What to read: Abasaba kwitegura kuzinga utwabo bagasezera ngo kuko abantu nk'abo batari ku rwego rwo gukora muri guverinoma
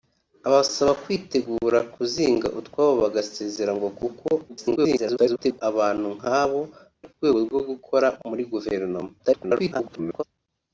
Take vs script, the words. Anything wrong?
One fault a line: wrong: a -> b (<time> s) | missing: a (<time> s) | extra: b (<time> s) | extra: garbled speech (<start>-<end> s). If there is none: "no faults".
extra: garbled speech (4.5-5.6 s)
missing: batari (6.6 s)
extra: garbled speech (9.2-10.2 s)